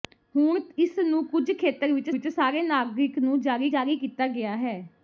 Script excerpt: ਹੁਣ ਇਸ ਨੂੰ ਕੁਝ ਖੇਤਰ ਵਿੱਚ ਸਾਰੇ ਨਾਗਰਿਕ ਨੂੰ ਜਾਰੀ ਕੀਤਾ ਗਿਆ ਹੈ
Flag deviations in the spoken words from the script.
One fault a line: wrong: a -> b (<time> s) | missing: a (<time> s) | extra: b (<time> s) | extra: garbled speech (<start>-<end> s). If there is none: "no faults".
extra: ਵਿੱਚ (2.1 s)
extra: ਜਾਰੀ (3.7 s)